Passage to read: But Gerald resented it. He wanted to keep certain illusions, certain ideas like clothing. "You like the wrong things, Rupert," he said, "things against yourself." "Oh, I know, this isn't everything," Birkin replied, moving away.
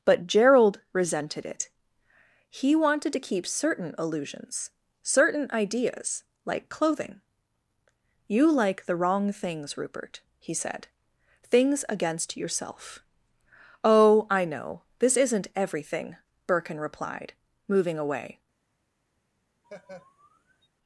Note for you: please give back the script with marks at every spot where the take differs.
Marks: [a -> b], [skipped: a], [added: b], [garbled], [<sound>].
But Gerald resented it. He wanted to keep certain illusions, certain ideas like clothing. "You like the wrong things, Rupert," he said, "things against yourself." "Oh, I know, this isn't everything," Birkin replied, moving away. [laugh]